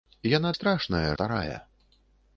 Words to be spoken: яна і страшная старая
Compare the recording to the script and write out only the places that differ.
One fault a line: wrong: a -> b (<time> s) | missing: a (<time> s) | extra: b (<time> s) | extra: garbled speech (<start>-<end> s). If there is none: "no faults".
no faults